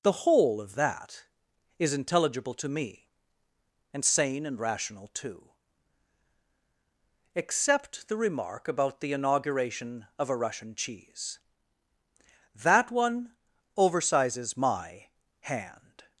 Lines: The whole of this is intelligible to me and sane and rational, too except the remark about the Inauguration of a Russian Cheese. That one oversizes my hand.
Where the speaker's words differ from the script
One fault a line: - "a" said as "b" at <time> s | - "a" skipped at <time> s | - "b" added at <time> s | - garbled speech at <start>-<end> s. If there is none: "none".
- "this" said as "that" at 0.8 s